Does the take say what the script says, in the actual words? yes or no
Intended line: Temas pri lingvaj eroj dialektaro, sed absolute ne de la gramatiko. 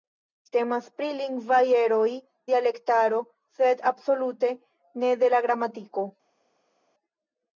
yes